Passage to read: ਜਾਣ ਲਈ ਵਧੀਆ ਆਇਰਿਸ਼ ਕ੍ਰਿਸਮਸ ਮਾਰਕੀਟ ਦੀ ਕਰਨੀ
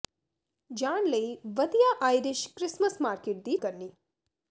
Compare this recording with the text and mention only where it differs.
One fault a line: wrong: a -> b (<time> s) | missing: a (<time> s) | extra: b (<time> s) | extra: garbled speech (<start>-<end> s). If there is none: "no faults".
no faults